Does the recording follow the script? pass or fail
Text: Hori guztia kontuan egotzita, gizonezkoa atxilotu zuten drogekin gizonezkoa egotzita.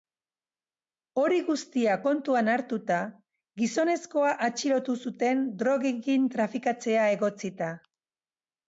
fail